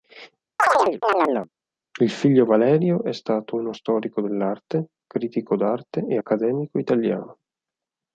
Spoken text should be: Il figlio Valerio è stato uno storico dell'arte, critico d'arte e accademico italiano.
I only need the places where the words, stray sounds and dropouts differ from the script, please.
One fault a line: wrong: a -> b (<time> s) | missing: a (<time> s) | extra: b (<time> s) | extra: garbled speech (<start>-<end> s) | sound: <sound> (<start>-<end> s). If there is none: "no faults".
sound: chirp (0.6-1.5 s)